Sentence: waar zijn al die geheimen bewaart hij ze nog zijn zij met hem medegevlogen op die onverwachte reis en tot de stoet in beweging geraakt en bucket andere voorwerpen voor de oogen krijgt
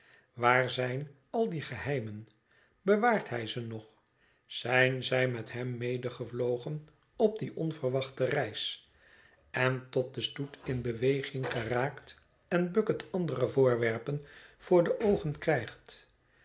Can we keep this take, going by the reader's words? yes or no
yes